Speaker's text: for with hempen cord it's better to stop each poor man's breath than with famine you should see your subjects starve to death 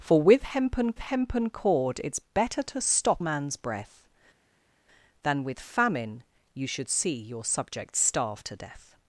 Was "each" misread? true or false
true